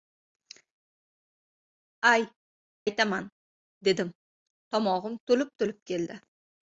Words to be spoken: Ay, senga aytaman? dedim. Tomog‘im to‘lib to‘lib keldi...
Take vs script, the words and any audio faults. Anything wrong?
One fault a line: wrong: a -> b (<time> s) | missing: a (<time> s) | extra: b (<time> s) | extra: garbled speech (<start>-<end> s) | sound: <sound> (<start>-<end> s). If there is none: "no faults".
missing: senga (2.3 s)